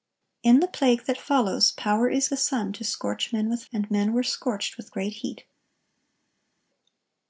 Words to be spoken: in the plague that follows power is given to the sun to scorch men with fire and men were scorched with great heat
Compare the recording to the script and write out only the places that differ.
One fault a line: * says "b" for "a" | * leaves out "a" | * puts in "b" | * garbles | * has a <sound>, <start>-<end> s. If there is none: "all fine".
* leaves out "given to"
* leaves out "fire"